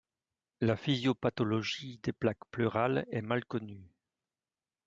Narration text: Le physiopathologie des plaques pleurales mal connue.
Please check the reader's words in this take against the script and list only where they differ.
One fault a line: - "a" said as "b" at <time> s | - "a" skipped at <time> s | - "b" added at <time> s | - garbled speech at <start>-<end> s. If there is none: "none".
- "Le" said as "La" at 0.6 s
- "est" added at 3.1 s